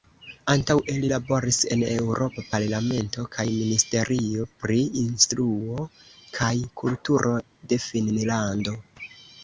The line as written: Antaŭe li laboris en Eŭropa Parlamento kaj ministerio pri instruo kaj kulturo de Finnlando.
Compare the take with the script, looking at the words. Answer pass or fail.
pass